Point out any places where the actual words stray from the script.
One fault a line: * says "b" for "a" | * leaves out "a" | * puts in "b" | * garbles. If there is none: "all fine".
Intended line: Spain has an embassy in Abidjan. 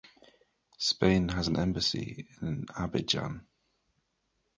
all fine